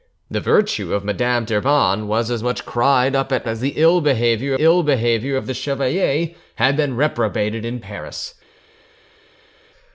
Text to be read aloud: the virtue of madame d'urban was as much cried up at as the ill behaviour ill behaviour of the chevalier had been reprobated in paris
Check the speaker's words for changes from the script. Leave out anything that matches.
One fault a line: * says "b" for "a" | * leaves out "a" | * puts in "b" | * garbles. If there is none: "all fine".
all fine